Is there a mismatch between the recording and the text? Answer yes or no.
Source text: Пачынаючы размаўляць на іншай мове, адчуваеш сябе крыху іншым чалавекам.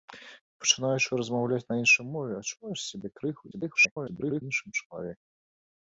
yes